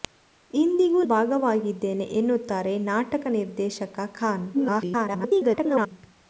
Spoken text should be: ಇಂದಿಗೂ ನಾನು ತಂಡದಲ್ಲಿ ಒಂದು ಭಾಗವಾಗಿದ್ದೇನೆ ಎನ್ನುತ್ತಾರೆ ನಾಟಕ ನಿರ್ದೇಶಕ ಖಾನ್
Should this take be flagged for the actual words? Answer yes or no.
yes